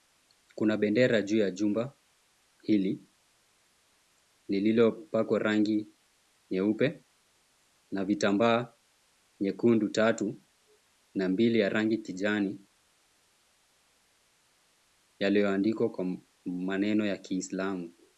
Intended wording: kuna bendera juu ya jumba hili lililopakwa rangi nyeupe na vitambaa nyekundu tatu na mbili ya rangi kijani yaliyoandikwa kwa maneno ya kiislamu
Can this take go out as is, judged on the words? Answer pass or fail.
pass